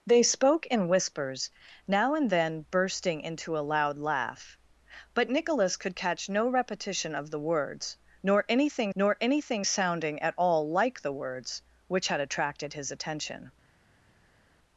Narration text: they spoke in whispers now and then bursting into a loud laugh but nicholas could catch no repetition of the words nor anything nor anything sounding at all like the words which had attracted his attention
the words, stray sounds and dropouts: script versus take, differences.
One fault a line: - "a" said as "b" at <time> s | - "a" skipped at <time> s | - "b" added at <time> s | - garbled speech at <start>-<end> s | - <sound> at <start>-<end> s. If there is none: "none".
none